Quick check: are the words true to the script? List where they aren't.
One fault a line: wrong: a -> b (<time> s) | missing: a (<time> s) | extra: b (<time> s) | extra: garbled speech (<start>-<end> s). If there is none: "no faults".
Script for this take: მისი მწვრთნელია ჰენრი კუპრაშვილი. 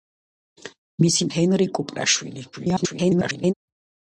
missing: მწვრთნელია (1.3 s)
extra: garbled speech (2.5-3.5 s)